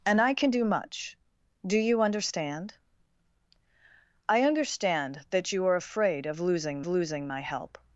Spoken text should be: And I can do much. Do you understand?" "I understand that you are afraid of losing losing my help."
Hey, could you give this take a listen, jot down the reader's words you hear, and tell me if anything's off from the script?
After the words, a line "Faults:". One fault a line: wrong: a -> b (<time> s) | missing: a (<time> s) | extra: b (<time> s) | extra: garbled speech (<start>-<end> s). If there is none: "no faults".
And I can do much. Do you understand?" "I understand that you are afraid of losing losing my help."
Faults:
no faults